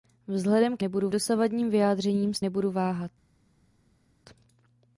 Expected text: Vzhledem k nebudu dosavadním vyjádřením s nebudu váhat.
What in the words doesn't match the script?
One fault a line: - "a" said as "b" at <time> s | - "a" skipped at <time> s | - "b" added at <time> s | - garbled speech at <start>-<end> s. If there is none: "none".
none